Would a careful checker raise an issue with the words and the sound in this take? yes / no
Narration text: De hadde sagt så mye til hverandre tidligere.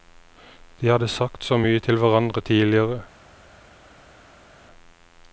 no